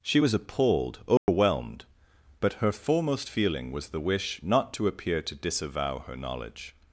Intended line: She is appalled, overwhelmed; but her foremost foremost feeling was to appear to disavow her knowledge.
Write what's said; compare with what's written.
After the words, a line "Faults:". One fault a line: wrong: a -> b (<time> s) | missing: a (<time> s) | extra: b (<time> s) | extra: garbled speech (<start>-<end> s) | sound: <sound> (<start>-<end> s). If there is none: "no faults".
She was appalled, overwhelmed; but her foremost feeling was the wish not to appear to disavow her knowledge.
Faults:
wrong: is -> was (0.2 s)
sound: dropout (1.2-1.3 s)
missing: foremost (3.3 s)
extra: the wish not (3.9 s)